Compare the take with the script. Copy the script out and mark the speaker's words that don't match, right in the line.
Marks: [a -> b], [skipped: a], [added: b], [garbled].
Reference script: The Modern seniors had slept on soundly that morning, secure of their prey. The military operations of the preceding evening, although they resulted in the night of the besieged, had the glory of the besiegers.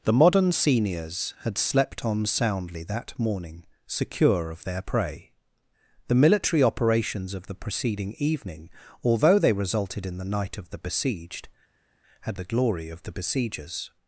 The Modern seniors had slept on soundly that morning, secure of their prey. The military operations of the preceding evening, although they resulted in the night of the besieged, had the glory of the besiegers.